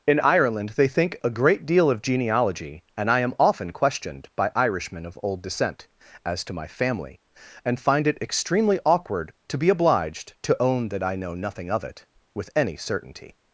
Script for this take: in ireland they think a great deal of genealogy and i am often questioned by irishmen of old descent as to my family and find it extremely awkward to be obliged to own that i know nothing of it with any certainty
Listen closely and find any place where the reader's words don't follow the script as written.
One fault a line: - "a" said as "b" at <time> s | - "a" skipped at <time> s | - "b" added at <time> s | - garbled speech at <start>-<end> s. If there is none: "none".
none